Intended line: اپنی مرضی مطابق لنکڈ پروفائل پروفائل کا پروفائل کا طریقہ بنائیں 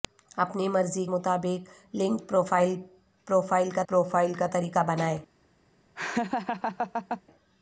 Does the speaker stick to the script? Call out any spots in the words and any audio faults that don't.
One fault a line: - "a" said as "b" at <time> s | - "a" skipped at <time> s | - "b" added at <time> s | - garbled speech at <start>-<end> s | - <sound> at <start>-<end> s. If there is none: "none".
- laugh at 6.0-7.2 s